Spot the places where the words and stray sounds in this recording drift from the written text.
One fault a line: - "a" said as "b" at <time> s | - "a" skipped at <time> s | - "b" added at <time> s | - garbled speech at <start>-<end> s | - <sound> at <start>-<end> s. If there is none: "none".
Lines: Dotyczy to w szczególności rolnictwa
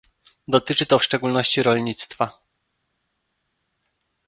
none